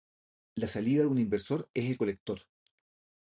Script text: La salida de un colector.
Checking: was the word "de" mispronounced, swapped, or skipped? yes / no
no